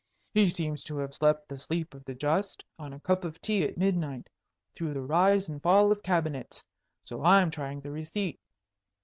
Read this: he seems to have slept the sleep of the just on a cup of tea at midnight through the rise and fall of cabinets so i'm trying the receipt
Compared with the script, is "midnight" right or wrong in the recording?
right